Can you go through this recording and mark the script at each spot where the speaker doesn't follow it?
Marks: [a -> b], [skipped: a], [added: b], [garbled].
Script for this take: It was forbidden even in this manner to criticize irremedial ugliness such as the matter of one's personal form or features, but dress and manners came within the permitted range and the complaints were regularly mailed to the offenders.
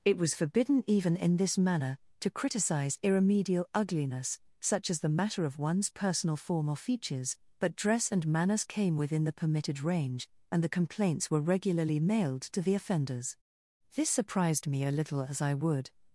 It was forbidden even in this manner to criticize irremedial ugliness such as the matter of one's personal form or features, but dress and manners came within the permitted range and the complaints were regularly mailed to the offenders. [added: This surprised me a little as I would]